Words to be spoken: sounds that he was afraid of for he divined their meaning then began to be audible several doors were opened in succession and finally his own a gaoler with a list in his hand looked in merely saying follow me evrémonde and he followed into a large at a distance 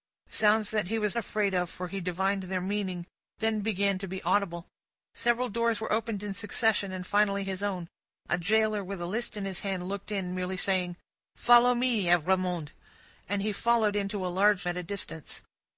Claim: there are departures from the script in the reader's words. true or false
false